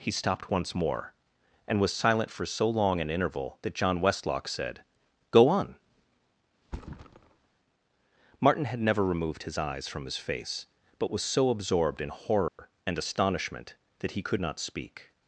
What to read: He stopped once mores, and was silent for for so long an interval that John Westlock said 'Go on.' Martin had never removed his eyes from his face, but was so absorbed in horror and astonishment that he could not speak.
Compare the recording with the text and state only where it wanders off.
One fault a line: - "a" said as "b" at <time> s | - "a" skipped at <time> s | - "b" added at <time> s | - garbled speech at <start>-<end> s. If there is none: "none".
- "mores" said as "more" at 0.7 s
- "for" skipped at 2.4 s